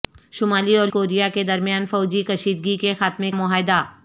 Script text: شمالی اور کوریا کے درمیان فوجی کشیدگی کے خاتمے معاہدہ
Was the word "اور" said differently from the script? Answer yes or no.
no